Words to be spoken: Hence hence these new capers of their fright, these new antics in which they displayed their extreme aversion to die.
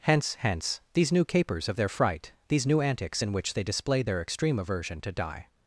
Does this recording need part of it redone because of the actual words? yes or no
no